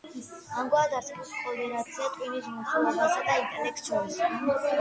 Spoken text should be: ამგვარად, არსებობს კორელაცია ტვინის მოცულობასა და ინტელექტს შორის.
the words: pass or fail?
pass